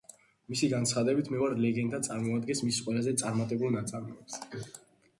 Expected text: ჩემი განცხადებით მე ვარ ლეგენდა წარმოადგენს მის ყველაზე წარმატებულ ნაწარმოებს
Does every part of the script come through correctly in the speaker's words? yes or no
no